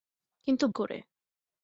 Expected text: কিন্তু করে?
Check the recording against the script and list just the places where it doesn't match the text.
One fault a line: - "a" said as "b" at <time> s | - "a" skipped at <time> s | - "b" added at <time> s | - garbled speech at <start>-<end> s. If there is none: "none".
none